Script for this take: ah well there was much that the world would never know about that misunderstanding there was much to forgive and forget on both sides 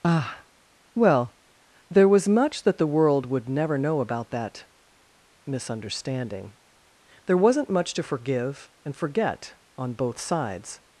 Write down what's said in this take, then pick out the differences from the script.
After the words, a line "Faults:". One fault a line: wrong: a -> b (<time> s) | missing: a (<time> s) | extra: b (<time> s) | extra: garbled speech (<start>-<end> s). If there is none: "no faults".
ah well there was much that the world would never know about that misunderstanding there wasn't much to forgive and forget on both sides
Faults:
wrong: was -> wasn't (7.4 s)